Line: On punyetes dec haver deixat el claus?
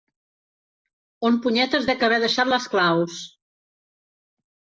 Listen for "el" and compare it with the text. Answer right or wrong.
wrong